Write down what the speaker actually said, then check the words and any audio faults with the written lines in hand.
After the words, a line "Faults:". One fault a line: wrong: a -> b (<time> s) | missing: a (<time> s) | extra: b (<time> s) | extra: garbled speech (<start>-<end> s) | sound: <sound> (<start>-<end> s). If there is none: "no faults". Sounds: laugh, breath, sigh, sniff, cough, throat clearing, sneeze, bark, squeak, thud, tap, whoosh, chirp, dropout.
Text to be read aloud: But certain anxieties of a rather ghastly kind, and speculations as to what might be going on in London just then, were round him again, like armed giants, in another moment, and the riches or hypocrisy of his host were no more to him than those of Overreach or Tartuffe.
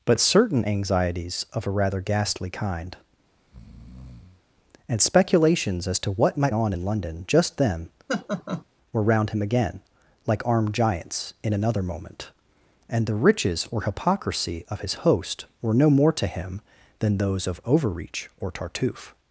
But certain anxieties of a rather ghastly kind, and speculations as to what might on in London just then, were round him again, like armed giants, in another moment, and the riches or hypocrisy of his host were no more to him than those of Overreach or Tartuffe.
Faults:
sound: breath (3.4-4.4 s)
missing: be going (6.5 s)
sound: laugh (8.1-8.6 s)